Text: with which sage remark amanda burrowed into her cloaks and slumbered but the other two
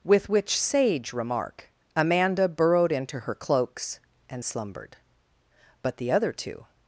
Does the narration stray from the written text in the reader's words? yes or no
no